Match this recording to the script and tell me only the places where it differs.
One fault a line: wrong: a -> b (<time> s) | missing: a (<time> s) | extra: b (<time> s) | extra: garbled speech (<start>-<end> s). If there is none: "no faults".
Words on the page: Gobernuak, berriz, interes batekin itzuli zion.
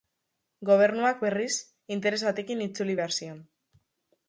extra: behar (3.0 s)